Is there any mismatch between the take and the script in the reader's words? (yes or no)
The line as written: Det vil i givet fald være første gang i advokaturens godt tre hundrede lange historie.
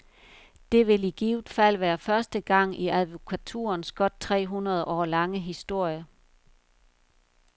yes